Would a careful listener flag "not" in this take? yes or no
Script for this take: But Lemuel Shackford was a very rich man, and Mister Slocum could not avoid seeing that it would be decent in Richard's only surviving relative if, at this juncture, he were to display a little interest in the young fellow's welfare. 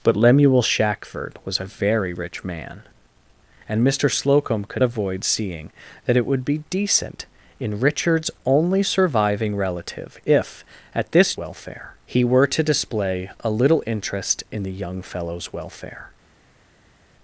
yes